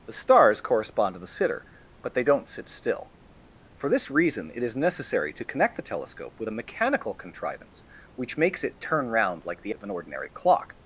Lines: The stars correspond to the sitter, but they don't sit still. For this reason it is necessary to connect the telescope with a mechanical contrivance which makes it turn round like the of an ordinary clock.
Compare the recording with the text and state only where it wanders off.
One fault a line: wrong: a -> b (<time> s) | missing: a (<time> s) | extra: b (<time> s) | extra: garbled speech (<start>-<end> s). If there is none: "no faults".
no faults